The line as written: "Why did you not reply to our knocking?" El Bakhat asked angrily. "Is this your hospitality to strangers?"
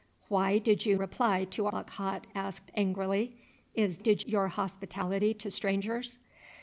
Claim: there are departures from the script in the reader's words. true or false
true